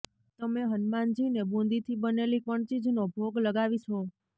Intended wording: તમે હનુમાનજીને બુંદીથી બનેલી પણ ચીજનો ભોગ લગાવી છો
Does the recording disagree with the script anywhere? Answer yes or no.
no